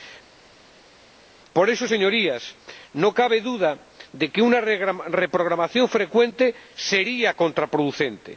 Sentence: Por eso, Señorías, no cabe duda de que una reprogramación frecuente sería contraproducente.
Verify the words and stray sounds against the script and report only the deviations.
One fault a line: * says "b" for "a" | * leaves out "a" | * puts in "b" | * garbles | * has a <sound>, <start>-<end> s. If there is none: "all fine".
all fine